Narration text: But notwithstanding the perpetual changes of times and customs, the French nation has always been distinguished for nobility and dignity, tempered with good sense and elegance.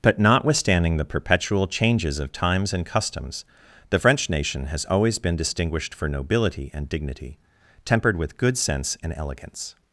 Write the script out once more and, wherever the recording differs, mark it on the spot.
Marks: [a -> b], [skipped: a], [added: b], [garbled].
But notwithstanding the perpetual changes of times and customs, the French nation has always been distinguished for nobility and dignity, tempered with good sense and elegance.